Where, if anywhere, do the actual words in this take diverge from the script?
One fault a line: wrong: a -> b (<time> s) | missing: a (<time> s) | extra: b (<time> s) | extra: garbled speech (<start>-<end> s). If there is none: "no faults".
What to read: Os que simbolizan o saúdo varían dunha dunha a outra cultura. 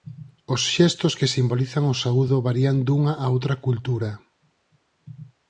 extra: xestos (0.7 s)
missing: dunha (3.1 s)